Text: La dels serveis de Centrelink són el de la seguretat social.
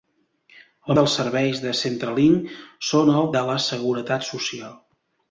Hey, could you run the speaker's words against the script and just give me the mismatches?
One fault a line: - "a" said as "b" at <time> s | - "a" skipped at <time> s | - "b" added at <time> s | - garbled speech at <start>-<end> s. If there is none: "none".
none